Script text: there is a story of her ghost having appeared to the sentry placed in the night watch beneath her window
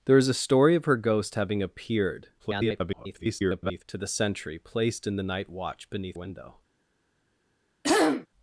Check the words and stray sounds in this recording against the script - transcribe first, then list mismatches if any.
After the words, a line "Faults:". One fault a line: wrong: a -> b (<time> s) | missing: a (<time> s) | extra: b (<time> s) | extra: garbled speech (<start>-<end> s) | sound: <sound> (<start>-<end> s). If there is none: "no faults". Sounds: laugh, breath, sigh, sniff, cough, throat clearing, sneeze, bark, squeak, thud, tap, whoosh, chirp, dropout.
there is a story of her ghost having appeared [garbled] to the sentry placed in the night watch beneath window
Faults:
extra: garbled speech (2.4-3.8 s)
missing: her (6.2 s)
sound: throat clearing (7.8-8.3 s)